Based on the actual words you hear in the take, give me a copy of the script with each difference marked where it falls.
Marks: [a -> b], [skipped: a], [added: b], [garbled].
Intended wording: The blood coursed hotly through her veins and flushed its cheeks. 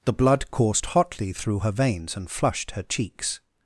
The blood coursed hotly through her veins and flushed [its -> her] cheeks.